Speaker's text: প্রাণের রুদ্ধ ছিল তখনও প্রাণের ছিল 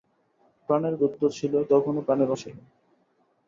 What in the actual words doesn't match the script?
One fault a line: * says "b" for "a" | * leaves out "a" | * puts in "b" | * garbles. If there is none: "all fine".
all fine